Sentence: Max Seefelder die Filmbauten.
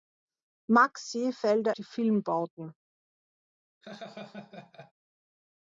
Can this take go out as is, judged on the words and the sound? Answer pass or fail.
fail